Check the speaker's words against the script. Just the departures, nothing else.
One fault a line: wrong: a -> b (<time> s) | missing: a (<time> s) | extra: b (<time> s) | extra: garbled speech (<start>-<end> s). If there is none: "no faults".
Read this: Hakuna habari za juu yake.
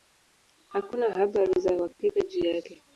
extra: uhakika (1.7 s)